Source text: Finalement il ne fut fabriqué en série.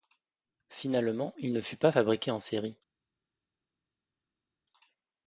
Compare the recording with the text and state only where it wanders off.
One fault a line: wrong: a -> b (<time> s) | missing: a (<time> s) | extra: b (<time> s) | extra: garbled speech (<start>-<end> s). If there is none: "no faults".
extra: pas (1.8 s)